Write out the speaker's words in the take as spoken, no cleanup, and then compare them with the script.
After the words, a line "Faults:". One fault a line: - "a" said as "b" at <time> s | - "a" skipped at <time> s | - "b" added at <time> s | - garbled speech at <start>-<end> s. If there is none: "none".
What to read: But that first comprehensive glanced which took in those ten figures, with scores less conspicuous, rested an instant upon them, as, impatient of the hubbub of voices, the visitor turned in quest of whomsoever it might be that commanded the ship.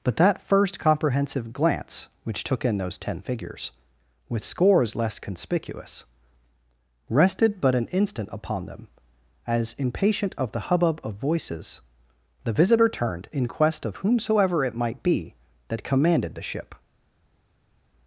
But that first comprehensive glance which took in those ten figures, with scores less conspicuous, rested but an instant upon them, as, impatient of the hubbub of voices, the visitor turned in quest of whomsoever it might be that commanded the ship.
Faults:
- "glanced" said as "glance" at 1.5 s
- "but" added at 7.6 s